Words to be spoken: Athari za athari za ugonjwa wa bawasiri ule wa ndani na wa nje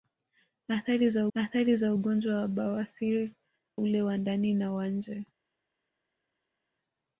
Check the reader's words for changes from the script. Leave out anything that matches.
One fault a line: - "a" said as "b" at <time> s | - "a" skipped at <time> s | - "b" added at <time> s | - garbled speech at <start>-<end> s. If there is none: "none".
none